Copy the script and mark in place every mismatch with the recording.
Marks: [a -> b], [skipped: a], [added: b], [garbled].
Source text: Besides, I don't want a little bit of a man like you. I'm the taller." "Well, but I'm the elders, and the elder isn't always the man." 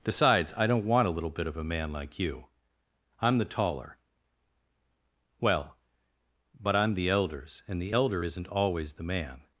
Besides, I don't want a little bit of a man like you. I'm the taller." "Well, but I'm the elders, and the elder isn't always the man."